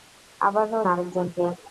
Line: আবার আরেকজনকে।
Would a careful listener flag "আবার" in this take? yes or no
no